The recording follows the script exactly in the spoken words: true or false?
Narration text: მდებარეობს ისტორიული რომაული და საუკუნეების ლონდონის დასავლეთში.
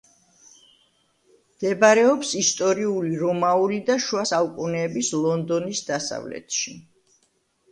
false